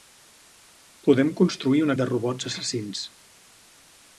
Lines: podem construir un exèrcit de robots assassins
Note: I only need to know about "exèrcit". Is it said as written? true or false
false